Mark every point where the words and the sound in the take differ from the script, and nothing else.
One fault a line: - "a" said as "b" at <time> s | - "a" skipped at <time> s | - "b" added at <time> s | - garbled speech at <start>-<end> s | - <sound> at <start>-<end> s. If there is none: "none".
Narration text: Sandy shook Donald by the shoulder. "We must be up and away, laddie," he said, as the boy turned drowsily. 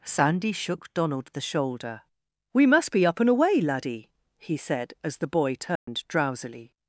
- "by" skipped at 1.3 s
- dropout at 5.8-5.9 s